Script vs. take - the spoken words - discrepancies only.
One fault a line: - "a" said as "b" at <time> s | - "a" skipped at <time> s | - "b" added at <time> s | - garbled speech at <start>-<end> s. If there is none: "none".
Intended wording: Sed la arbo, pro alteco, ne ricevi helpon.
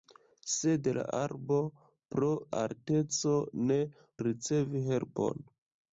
none